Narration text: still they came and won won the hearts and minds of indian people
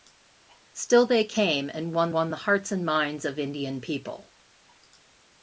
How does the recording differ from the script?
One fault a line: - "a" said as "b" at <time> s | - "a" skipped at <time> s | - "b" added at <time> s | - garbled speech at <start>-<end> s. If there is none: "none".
none